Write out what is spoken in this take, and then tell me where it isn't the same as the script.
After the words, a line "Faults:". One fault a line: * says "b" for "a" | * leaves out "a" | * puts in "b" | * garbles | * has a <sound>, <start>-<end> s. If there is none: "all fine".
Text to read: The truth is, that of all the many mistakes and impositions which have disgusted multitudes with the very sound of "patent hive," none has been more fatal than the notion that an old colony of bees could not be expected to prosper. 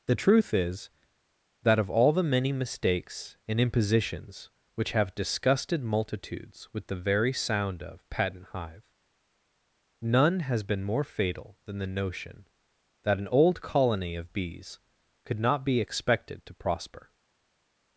The truth is, that of all the many mistakes and impositions which have disgusted multitudes with the very sound of "patent hive," none has been more fatal than the notion that an old colony of bees could not be expected to prosper.
Faults:
all fine